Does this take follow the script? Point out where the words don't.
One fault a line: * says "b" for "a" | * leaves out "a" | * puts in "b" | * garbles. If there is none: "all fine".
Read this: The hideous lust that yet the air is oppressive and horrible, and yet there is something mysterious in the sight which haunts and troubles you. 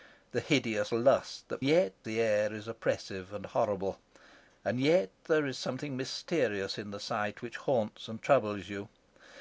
all fine